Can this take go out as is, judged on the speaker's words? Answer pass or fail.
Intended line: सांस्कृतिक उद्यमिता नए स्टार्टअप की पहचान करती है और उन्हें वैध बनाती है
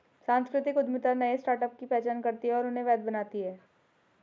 pass